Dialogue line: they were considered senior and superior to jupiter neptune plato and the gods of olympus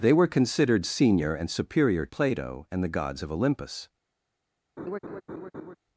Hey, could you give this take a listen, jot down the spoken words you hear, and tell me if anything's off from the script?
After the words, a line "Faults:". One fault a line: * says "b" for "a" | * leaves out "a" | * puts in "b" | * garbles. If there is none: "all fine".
they were considered senior and superior plato and the gods of olympus
Faults:
* leaves out "to jupiter neptune"